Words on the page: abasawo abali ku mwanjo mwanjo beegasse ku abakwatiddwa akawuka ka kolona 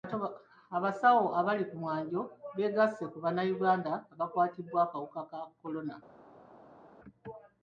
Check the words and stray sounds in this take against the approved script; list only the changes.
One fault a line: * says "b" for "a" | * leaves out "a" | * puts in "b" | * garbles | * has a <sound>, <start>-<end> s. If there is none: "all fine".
* leaves out "mwanjo"
* puts in "bannayuganda"